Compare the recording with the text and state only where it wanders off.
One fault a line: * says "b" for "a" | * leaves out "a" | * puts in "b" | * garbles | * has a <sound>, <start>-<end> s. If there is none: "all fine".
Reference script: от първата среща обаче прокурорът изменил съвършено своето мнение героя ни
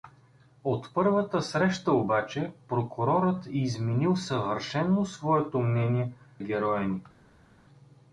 all fine